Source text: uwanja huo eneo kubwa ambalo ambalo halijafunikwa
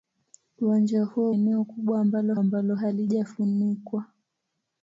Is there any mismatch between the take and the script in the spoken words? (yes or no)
no